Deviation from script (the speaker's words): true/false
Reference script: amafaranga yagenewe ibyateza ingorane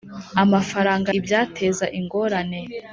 true